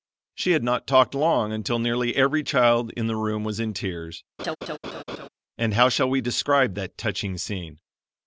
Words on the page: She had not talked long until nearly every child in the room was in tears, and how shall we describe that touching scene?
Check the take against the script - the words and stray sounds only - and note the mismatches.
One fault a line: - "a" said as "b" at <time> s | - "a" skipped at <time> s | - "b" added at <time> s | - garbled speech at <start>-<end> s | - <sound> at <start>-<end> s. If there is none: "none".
- laugh at 4.4-5.3 s